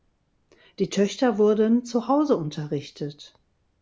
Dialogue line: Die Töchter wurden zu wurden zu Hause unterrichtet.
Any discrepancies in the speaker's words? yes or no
yes